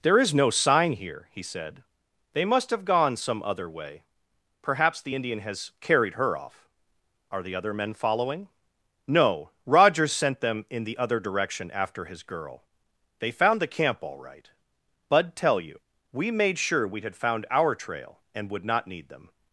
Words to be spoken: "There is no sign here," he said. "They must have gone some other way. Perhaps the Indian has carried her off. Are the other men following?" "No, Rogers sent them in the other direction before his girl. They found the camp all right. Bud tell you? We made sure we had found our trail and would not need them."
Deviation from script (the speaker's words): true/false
true